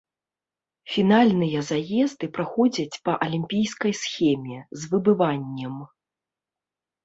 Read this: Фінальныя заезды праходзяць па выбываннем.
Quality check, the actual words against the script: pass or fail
fail